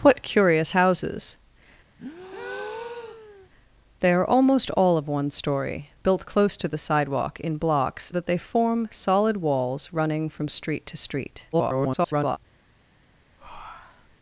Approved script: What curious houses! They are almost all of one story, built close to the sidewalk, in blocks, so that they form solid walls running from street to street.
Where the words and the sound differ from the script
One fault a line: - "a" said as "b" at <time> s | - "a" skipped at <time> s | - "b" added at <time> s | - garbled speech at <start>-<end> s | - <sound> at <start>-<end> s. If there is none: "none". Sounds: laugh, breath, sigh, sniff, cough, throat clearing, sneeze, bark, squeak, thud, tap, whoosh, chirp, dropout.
- breath at 2.0-3.5 s
- "so" skipped at 8.1 s
- garbled speech at 11.5-12.4 s
- breath at 13.4-14.2 s